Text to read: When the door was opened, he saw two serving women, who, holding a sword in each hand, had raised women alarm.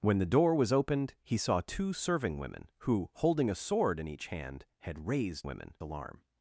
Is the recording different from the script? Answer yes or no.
no